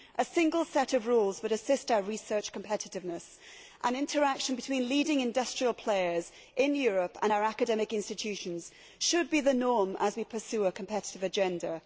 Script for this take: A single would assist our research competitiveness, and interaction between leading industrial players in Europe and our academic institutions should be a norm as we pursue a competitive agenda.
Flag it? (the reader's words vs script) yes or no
yes